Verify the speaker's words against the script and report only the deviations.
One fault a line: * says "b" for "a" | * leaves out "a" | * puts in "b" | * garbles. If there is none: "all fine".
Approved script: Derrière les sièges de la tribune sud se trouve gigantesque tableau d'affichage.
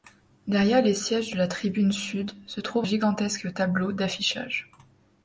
all fine